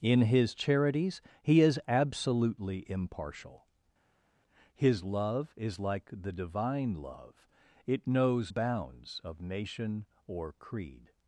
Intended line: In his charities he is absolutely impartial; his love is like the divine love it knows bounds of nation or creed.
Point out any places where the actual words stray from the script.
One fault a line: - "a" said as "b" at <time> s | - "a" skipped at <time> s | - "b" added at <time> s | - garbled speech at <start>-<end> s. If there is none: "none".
none